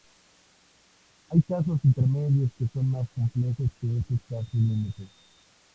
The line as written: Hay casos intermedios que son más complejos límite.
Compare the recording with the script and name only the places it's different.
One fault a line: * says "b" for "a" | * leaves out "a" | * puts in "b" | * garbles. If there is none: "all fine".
* puts in "que estos casos"